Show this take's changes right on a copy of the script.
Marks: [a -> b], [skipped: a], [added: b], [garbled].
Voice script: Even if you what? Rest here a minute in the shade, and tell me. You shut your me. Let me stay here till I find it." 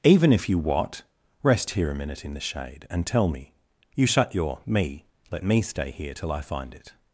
Even if you what? Rest here a minute in the shade, and tell me. You shut your me. Let me stay here till I find it."